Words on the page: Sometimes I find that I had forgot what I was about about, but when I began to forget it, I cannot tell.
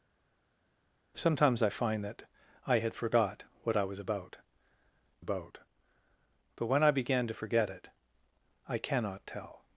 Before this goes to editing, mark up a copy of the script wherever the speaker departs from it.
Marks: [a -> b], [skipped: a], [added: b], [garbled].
Sometimes I find that I had forgot what I was about about, but when I began to forget it, I cannot tell.